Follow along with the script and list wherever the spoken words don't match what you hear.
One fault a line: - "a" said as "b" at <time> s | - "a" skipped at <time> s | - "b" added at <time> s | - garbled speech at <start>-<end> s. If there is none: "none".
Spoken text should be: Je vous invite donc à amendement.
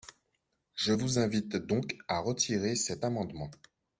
- "retirer cet" added at 2.2 s